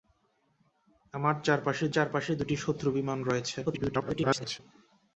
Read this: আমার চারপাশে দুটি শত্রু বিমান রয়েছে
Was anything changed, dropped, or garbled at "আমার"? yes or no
no